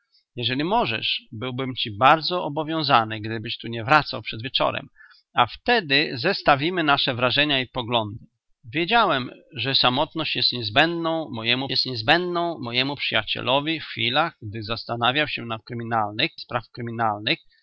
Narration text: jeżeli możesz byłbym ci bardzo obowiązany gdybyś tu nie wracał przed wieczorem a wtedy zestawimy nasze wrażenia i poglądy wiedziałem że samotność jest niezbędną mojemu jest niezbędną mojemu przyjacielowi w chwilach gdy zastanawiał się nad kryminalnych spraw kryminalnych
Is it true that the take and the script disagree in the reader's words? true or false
false